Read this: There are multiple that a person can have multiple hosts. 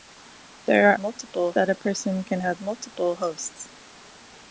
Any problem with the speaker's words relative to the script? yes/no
no